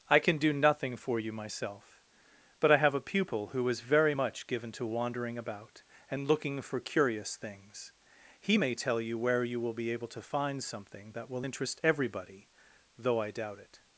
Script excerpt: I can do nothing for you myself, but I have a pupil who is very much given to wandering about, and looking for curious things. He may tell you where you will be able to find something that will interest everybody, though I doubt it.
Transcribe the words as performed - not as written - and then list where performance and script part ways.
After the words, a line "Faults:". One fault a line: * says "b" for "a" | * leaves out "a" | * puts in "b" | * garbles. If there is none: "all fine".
I can do nothing for you myself, but I have a pupil who is very much given to wandering about, and looking for curious things. He may tell you where you will be able to find something that will interest everybody, though I doubt it.
Faults:
all fine